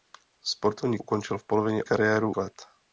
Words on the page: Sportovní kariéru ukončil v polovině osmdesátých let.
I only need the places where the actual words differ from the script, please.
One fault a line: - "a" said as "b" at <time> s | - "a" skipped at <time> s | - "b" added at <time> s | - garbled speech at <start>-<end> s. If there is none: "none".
- "kariéru" skipped at 1.0 s
- "osmdesátých" said as "kariéru" at 1.8 s